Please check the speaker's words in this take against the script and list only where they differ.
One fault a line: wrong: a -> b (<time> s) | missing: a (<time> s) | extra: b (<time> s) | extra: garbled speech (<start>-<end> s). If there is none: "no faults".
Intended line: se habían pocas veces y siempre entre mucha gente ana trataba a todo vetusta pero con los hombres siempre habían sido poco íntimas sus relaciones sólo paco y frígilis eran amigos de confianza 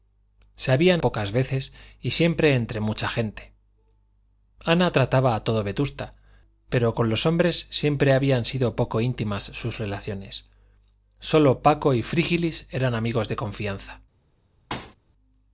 no faults